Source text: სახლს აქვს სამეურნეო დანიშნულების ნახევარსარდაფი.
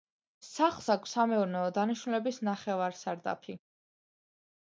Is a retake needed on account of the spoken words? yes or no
no